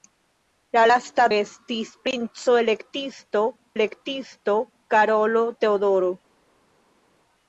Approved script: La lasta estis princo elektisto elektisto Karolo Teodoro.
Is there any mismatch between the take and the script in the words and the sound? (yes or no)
no